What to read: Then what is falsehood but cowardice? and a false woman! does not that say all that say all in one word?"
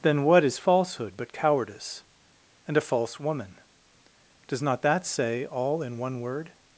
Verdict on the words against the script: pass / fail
fail